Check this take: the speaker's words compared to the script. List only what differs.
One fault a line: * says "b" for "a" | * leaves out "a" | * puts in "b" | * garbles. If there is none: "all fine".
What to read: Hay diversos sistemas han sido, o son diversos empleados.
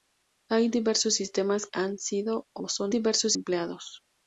all fine